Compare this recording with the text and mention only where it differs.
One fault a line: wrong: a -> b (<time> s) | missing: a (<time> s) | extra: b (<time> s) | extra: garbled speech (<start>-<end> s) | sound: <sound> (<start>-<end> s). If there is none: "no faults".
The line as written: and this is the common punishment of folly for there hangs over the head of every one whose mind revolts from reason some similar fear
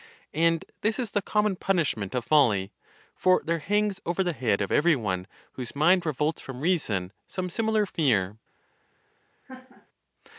sound: laugh (9.5-9.9 s)